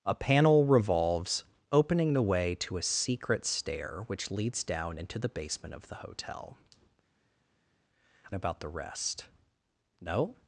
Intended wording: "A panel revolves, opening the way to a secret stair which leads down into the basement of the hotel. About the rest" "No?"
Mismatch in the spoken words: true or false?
false